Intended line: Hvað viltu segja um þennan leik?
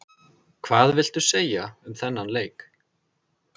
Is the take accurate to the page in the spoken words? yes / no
yes